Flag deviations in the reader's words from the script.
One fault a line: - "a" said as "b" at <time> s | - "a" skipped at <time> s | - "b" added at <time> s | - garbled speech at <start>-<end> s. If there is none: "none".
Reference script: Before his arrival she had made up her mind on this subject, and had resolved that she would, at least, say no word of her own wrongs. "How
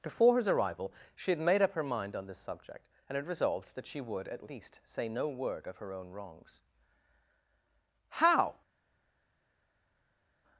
none